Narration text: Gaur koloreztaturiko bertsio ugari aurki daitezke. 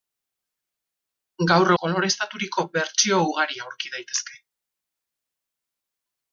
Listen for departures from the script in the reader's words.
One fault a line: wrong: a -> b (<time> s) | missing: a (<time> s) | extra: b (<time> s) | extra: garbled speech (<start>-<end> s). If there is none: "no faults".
no faults